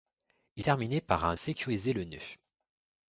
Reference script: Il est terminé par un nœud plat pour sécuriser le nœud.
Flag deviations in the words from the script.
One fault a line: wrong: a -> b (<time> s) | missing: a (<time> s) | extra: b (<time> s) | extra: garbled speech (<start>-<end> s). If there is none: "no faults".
missing: est (0.7 s)
missing: nœud plat pour (1.4 s)